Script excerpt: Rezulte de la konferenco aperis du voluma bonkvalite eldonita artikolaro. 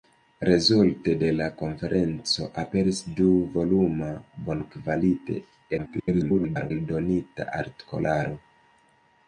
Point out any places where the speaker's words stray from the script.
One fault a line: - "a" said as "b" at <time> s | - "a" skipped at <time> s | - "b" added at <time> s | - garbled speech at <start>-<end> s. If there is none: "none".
- garbled speech at 5.8-6.7 s